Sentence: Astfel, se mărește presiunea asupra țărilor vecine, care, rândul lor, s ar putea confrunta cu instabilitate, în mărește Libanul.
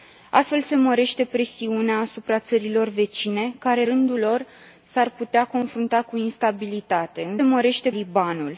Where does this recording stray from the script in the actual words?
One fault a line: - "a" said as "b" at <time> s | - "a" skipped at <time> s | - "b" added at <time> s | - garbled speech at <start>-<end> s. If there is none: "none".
none